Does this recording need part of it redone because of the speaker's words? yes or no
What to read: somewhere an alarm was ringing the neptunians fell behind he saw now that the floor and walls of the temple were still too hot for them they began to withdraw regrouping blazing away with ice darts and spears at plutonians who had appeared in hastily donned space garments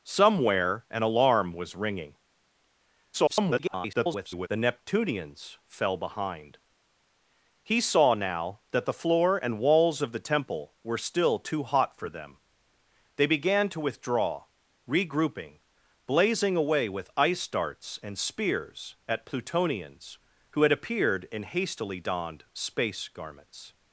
yes